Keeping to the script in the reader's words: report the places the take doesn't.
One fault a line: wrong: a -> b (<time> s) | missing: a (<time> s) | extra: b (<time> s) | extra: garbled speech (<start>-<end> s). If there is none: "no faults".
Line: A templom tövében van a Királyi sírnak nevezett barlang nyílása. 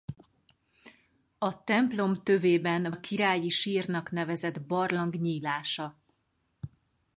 missing: van (2.9 s)